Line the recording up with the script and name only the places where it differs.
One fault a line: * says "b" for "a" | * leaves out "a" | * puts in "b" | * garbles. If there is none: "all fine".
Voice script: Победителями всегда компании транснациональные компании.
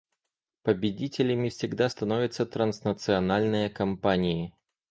* says "становятся" for "компании"